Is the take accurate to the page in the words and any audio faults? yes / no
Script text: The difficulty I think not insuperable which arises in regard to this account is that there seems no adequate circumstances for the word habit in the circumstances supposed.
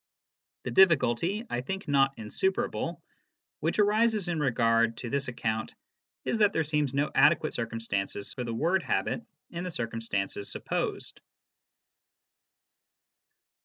yes